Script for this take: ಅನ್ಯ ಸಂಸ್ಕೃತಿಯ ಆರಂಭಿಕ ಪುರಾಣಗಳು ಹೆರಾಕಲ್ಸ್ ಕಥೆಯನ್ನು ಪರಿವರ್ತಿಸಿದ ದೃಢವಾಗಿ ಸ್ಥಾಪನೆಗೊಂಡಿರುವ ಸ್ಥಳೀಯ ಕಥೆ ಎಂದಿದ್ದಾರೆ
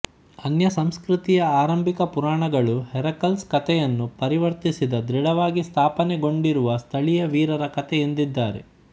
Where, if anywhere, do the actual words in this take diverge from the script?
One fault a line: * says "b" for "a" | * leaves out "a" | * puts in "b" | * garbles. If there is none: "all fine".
* puts in "ವೀರರ"